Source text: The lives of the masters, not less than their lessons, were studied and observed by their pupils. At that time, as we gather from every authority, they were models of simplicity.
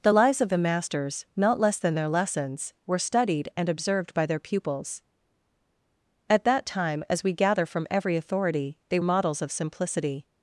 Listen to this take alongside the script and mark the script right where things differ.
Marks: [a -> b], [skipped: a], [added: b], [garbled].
The lives of the masters, not less than their lessons, were studied and observed by their pupils. At that time, as we gather from every authority, they [skipped: were] models of simplicity.